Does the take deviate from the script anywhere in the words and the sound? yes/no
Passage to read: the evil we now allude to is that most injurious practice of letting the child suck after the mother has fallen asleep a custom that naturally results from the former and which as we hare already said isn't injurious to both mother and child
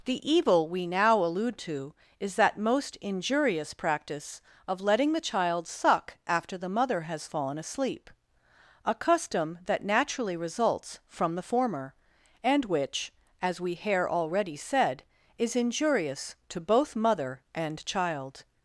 yes